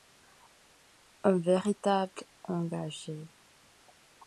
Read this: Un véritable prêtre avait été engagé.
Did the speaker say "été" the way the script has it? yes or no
no